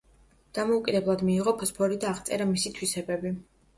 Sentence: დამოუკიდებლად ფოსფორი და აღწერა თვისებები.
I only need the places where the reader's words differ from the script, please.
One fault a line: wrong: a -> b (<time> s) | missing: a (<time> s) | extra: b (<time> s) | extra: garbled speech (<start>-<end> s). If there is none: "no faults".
extra: მიიღო (1.3 s)
extra: მისი (2.6 s)